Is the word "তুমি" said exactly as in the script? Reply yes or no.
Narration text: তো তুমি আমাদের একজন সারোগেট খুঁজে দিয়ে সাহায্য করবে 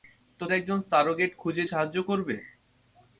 no